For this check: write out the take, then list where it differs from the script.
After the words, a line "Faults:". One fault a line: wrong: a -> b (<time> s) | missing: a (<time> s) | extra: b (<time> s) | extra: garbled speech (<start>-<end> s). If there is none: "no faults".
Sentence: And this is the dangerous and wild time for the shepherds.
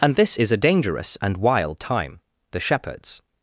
And this is a dangerous and wild time the shepherds.
Faults:
wrong: the -> a (0.5 s)
missing: for (2.2 s)